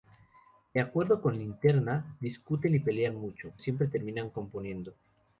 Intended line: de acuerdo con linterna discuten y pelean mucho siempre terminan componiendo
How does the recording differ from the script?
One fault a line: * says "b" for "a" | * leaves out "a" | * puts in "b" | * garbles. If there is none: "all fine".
all fine